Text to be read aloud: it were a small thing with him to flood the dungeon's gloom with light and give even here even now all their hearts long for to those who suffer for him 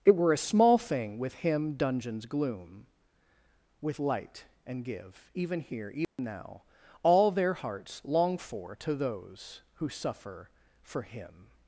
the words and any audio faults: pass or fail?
fail